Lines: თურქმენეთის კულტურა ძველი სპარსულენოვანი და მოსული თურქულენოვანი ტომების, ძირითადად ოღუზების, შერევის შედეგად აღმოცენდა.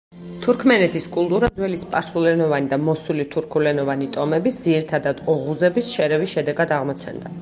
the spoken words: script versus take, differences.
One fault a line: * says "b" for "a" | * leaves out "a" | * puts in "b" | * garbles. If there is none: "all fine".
all fine